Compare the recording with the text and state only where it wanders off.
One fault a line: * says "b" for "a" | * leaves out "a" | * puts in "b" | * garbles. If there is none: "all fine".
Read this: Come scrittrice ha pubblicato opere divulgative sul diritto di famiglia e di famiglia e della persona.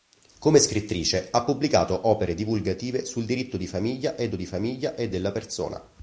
all fine